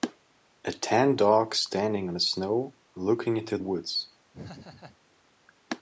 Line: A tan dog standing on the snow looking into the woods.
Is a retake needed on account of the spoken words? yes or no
yes